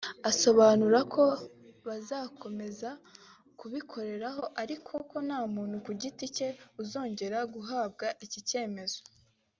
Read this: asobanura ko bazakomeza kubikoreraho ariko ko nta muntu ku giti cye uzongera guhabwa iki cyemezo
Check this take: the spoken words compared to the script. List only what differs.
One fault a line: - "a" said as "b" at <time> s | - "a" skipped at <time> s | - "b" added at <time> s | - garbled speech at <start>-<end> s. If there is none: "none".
none